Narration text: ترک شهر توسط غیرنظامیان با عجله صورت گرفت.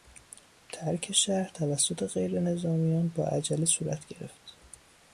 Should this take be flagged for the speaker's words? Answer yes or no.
no